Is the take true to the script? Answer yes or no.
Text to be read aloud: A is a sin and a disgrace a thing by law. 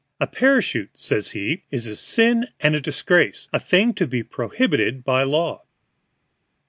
no